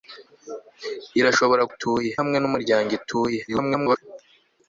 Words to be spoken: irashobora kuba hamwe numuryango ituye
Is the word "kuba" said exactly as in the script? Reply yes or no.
no